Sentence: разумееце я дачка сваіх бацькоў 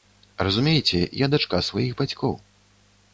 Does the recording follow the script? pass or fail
pass